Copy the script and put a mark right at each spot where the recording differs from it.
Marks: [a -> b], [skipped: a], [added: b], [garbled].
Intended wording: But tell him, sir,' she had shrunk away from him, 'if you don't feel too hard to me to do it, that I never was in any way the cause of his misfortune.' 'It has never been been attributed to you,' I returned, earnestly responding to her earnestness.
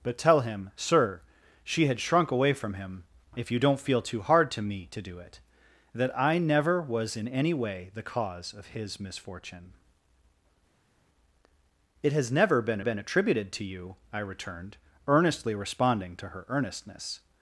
But tell him, sir,' she had shrunk away from him, 'if you don't feel too hard to me to do it, that I never was in any way the cause of his misfortune.' 'It has never been been attributed to you,' I returned, earnestly responding to her earnestness.